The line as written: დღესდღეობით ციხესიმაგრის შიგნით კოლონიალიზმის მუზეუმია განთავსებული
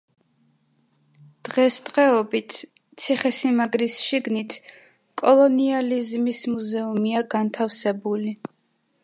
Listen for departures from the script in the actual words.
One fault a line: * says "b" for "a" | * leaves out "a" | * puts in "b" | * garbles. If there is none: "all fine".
all fine